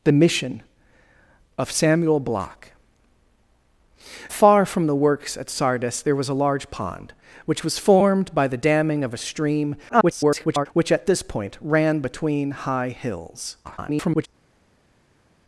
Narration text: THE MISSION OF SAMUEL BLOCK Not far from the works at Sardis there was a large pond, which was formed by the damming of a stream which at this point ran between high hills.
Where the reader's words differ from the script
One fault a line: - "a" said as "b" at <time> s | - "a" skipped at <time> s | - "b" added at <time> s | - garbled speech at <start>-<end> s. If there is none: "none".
- "Not" skipped at 2.7 s
- garbled speech at 9.9-10.7 s
- garbled speech at 13.6-14.3 s